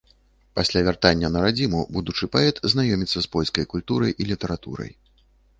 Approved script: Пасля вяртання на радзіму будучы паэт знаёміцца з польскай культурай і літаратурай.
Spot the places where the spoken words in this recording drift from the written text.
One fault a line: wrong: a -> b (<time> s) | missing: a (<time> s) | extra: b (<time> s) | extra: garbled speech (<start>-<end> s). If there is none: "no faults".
no faults